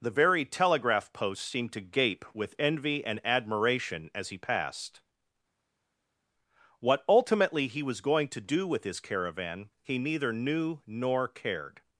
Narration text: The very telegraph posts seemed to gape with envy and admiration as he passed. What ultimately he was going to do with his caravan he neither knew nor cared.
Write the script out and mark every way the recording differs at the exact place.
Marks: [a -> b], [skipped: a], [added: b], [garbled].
The very telegraph posts seemed to gape with envy and admiration as he passed. What ultimately he was going to do with his caravan he neither knew nor cared.